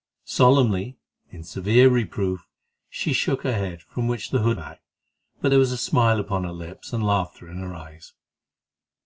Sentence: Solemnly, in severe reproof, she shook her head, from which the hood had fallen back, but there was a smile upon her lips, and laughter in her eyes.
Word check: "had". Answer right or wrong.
wrong